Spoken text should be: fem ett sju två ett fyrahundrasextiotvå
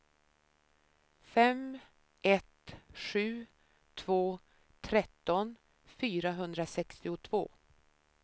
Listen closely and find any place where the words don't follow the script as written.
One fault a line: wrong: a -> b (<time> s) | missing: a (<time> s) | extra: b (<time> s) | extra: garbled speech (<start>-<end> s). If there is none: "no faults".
wrong: ett -> tretton (4.8 s)